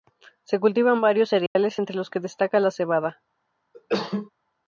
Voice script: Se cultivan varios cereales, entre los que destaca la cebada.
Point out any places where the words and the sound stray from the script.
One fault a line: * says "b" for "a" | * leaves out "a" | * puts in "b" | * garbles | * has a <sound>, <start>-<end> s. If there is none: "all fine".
* has a dropout, 1.5-1.6 s
* has a cough, 3.7-4.3 s